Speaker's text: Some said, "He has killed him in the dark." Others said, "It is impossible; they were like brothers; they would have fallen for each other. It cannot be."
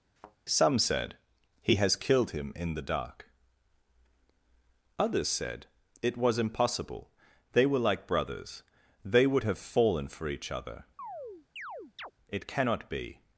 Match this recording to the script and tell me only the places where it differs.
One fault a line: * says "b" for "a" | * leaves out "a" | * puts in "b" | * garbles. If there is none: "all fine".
* says "was" for "is"